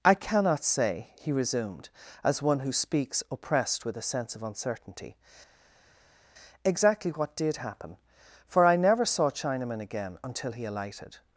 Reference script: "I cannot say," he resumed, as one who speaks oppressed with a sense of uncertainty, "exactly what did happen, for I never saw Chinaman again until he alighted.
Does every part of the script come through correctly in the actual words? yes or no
yes